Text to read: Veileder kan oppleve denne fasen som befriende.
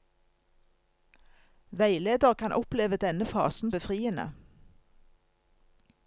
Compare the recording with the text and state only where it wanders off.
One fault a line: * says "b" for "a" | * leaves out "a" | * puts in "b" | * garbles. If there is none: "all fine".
* leaves out "som"